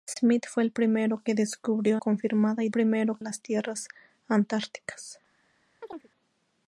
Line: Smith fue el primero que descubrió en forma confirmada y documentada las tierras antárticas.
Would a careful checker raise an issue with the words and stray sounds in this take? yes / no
yes